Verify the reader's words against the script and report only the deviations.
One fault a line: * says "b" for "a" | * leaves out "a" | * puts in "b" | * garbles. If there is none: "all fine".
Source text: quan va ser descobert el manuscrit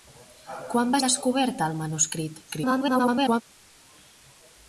* leaves out "ser"
* garbles